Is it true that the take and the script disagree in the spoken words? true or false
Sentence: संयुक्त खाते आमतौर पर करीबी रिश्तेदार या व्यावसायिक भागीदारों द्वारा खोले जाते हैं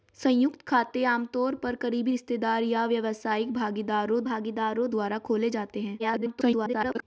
true